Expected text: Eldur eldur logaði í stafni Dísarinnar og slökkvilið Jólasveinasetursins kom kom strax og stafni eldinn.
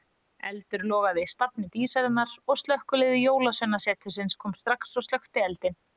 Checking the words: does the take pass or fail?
fail